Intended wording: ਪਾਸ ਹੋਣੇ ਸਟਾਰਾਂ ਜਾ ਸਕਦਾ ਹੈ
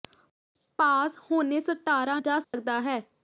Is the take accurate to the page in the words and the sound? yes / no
no